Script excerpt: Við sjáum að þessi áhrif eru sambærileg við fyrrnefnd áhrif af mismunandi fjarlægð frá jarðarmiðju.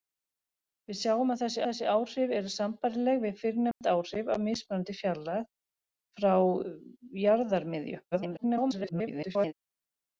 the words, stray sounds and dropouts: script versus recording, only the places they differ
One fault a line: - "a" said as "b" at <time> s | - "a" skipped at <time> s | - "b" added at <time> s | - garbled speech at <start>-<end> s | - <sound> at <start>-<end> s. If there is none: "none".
- "þessi" added at 1.7 s
- dropout at 3.7-3.8 s
- garbled speech at 8.1-9.5 s